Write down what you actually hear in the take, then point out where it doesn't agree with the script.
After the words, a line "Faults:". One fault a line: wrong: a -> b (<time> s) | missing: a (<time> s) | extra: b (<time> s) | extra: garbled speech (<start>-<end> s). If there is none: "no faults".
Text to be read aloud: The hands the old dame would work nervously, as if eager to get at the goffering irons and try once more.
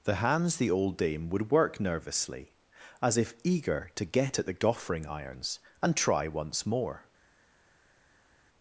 The hands the old dame would work nervously, as if eager to get at the goffering irons and try once more.
Faults:
no faults